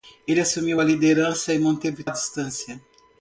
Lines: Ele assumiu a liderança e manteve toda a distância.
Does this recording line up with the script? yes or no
no